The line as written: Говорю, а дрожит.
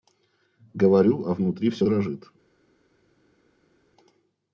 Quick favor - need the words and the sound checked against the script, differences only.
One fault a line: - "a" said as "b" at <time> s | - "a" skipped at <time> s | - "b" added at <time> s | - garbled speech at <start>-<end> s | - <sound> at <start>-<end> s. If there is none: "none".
- "внутри все" added at 1.4 s